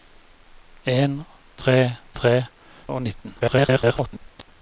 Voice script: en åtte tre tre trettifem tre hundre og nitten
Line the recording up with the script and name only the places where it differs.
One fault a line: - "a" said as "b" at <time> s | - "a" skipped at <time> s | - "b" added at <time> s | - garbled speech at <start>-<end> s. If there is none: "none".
- "åtte" skipped at 1.2 s
- "trettifem tre hundre" skipped at 2.3 s
- garbled speech at 3.4-4.5 s